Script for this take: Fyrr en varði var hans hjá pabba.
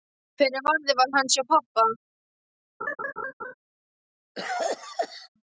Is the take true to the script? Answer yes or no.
yes